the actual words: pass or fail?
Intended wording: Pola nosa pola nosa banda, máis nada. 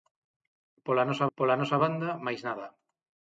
pass